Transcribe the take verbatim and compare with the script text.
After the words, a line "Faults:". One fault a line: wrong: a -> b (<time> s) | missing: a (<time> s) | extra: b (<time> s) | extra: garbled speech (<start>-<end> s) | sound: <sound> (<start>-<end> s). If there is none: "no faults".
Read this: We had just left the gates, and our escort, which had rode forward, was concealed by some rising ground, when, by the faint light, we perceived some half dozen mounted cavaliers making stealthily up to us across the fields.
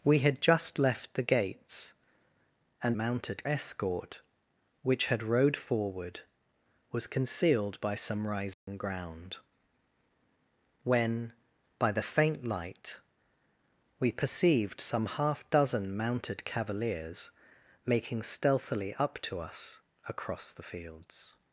We had just left the gates, and mounted escort, which had rode forward, was concealed by some rising ground, when, by the faint light, we perceived some half dozen mounted cavaliers making stealthily up to us across the fields.
Faults:
wrong: our -> mounted (3.0 s)
sound: dropout (8.5-8.7 s)